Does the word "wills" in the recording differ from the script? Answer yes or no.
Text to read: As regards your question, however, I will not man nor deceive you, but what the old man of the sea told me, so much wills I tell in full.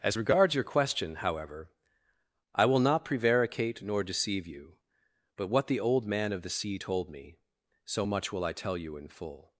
yes